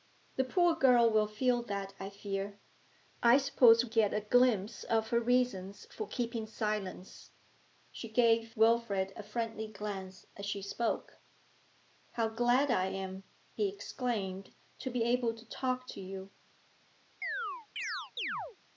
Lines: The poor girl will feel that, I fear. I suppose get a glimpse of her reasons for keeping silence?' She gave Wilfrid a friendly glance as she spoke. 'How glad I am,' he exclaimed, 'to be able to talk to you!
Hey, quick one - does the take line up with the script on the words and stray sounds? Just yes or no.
no